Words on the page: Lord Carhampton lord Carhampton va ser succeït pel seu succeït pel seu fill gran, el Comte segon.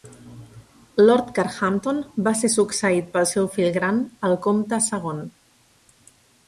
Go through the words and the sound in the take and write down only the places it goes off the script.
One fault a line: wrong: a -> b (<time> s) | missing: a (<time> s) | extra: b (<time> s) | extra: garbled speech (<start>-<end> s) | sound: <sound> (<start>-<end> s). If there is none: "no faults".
missing: lord Carhampton (2.0 s)
missing: succeït pel seu (3.5 s)